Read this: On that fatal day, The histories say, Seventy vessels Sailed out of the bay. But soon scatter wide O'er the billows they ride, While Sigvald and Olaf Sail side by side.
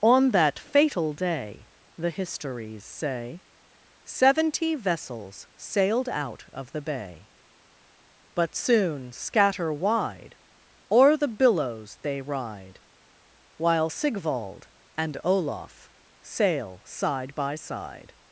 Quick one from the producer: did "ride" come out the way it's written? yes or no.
yes